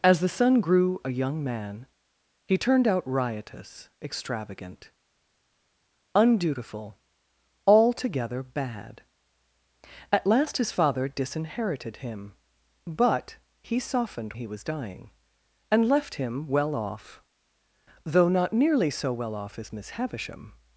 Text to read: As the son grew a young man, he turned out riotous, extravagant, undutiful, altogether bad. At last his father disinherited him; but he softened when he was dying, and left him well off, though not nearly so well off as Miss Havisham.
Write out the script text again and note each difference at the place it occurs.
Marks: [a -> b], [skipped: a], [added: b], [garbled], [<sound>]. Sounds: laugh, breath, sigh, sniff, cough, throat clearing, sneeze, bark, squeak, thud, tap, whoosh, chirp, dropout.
As the son grew a young man, he turned out riotous, extravagant, undutiful, altogether bad. At last his father disinherited him; but he softened [skipped: when] he was dying, and left him well off, though not nearly so well off as Miss Havisham.